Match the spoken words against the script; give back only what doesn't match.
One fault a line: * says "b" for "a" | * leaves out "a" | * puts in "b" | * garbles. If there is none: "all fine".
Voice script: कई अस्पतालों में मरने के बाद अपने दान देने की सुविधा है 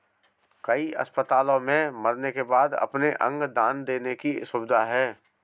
* puts in "अंग"